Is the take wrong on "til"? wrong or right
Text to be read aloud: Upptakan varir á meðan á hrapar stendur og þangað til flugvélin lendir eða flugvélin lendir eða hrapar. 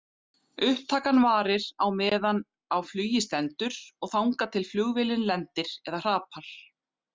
right